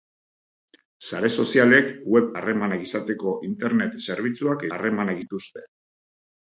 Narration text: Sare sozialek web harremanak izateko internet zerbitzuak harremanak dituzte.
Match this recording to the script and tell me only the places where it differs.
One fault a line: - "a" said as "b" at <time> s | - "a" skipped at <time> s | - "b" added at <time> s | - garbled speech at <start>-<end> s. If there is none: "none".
none